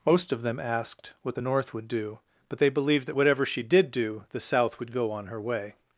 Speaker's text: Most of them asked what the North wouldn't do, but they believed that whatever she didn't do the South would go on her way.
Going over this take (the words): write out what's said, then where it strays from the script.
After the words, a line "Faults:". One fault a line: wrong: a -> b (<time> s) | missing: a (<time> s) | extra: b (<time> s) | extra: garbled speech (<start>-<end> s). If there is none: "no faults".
Most of them asked what the North would do, but they believed that whatever she did do the South would go on her way.
Faults:
wrong: wouldn't -> would (1.7 s)
wrong: didn't -> did (3.6 s)